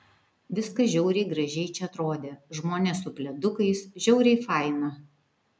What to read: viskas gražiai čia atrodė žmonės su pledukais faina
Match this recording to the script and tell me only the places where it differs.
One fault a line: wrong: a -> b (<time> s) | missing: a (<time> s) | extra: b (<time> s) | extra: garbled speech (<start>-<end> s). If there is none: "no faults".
extra: žiauriai (0.9 s)
extra: žiauriai (4.1 s)